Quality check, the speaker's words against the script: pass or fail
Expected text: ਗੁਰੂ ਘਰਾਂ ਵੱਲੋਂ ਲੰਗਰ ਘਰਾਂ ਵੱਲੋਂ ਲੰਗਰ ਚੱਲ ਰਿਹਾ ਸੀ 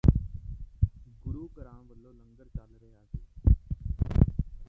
fail